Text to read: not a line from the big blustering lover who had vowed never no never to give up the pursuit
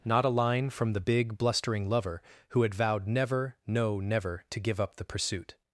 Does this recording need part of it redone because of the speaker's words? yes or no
no